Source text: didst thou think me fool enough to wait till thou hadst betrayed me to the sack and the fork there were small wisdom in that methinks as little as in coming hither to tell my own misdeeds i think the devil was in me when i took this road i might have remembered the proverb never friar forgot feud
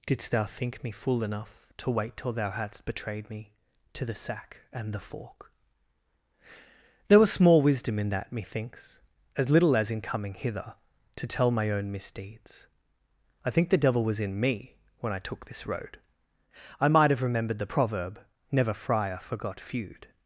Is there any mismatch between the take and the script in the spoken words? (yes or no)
yes